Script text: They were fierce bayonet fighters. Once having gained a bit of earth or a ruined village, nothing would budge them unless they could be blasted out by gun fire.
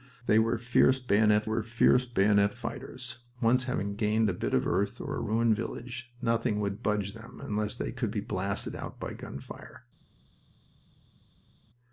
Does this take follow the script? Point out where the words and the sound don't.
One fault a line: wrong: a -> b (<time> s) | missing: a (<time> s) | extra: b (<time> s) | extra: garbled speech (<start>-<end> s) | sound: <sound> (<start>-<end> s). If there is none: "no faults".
extra: were fierce bayonet (1.4 s)